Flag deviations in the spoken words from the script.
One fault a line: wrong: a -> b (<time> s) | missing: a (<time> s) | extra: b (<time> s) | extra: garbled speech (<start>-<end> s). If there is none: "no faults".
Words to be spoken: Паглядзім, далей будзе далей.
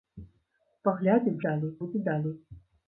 no faults